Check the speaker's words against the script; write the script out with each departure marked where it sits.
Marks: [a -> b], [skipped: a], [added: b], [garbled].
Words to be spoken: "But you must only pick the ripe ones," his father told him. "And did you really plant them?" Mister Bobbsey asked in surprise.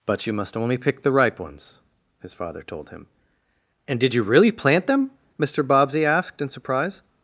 "But you must only pick the ripe ones," his father told him. "And did you really plant them?" Mister Bobbsey asked in surprise.